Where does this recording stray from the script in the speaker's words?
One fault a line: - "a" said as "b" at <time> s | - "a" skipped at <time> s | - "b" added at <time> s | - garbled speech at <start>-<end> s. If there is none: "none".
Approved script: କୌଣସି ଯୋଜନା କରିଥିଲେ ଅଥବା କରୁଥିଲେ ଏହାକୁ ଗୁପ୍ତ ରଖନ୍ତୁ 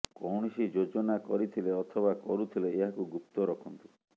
none